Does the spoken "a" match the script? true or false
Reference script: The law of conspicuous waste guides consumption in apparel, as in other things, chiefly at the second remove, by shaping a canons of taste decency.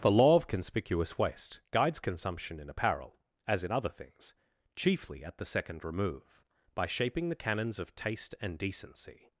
false